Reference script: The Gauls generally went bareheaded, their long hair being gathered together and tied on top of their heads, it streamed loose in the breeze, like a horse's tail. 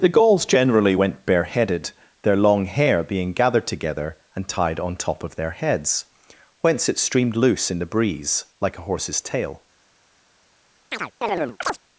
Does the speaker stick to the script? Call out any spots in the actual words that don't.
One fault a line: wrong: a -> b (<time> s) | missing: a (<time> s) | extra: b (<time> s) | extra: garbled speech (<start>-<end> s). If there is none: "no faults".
extra: whence (6.6 s)